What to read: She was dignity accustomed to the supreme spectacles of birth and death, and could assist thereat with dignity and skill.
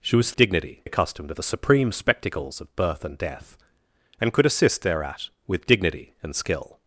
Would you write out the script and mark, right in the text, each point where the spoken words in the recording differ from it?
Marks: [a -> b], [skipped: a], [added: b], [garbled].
She was dignity accustomed to the supreme spectacles of birth and death, and could assist thereat with dignity and skill.